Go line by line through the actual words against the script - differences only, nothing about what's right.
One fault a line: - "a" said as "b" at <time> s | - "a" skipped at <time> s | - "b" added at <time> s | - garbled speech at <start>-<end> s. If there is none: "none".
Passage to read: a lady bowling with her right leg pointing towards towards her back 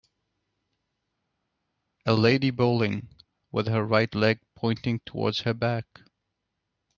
- "towards" skipped at 5.4 s